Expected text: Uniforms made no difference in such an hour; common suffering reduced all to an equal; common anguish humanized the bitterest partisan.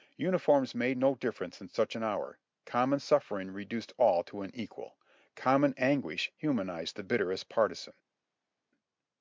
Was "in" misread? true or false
false